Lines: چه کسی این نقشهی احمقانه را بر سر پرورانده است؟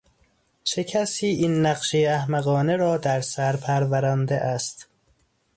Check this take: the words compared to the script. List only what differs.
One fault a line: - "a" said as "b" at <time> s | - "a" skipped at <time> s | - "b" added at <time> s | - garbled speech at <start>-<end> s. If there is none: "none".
- "بر" said as "در" at 3.0 s